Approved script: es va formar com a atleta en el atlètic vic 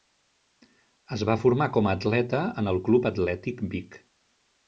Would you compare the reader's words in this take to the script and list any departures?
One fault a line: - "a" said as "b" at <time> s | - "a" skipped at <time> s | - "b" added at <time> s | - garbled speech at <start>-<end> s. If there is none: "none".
- "club" added at 2.9 s